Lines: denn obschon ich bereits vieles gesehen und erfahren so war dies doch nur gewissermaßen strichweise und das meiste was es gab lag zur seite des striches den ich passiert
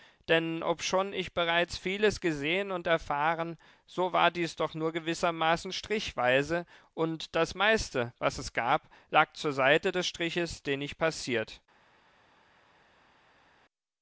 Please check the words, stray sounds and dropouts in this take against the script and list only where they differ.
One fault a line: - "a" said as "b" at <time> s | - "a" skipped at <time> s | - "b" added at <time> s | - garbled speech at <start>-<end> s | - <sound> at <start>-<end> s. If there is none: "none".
none